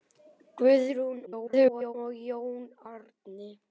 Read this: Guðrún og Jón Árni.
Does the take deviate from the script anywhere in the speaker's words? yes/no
yes